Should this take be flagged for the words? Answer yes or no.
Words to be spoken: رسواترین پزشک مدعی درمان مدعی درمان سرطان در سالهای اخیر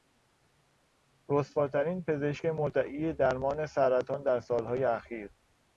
yes